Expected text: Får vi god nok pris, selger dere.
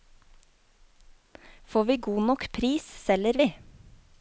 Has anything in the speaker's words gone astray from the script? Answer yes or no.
yes